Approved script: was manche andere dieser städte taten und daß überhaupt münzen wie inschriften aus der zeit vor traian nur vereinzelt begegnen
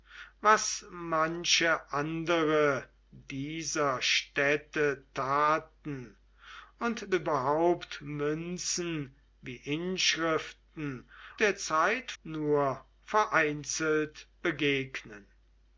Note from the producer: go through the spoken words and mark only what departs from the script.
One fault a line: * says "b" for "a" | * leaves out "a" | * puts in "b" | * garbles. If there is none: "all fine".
* leaves out "daß"
* leaves out "aus"
* leaves out "vor traian"